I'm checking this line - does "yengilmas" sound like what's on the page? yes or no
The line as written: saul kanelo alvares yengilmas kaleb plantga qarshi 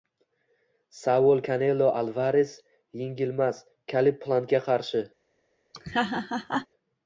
yes